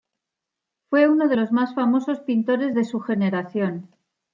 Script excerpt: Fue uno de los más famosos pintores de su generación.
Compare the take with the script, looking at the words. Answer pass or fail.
pass